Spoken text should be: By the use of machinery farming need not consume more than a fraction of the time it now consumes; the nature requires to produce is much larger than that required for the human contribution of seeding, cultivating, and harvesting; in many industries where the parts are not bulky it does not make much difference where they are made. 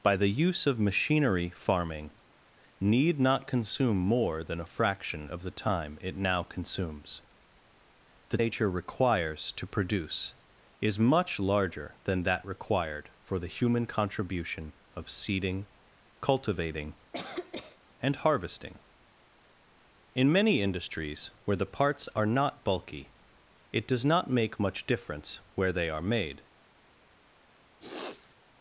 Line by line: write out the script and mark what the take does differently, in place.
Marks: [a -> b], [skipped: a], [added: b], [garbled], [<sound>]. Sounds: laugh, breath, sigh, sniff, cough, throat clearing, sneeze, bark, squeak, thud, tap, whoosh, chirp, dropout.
By the use of machinery farming need not consume more than a fraction of the time it now consumes; the nature requires to produce is much larger than that required for the human contribution of seeding, cultivating, [cough] and harvesting; in many industries where the parts are not bulky it does not make much difference where they are made. [sniff]